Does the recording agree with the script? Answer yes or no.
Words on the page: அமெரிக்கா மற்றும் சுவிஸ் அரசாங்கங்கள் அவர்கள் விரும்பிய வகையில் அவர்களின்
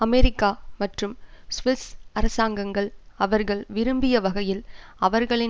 yes